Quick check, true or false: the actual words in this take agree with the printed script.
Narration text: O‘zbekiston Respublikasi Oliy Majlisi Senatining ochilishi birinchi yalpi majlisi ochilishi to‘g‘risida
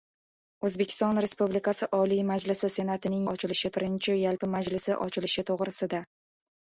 true